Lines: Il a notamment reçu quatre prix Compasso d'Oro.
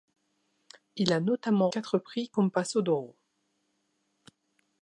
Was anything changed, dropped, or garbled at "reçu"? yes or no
yes